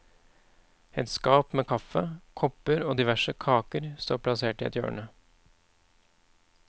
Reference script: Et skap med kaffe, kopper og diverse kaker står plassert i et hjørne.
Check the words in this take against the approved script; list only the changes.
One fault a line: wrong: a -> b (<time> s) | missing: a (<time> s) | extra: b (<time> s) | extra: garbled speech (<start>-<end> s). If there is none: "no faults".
no faults